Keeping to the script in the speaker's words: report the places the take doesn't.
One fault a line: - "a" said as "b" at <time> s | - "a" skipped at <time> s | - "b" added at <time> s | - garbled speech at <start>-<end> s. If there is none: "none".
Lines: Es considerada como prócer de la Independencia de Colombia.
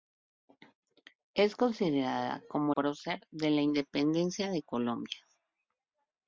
none